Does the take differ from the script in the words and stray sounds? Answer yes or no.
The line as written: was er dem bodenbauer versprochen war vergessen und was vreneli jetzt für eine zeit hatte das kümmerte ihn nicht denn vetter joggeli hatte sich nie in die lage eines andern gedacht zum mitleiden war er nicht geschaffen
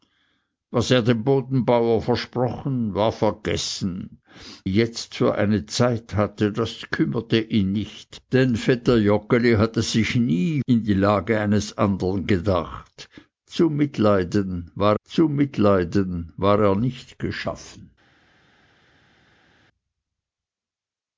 yes